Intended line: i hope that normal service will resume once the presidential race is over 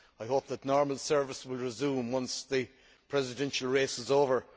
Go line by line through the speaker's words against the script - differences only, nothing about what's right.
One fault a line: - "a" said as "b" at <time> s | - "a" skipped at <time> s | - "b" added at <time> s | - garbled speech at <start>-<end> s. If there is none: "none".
none